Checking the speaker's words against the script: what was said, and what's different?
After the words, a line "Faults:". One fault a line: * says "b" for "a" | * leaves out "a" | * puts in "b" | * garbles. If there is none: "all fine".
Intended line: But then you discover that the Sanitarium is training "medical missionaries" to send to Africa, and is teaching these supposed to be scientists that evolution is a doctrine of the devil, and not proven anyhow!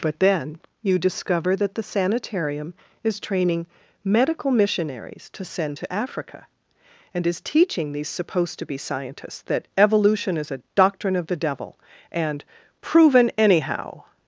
But then you discover that the Sanitarium is training "medical missionaries" to send to Africa, and is teaching these supposed to be scientists that evolution is a doctrine of the devil, and proven anyhow!
Faults:
* leaves out "not"